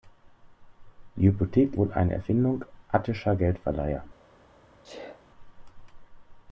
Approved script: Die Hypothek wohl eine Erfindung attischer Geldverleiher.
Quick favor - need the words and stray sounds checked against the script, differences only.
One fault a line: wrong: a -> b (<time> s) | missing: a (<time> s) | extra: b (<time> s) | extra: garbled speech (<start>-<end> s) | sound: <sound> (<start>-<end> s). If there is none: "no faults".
sound: sneeze (4.8-5.2 s)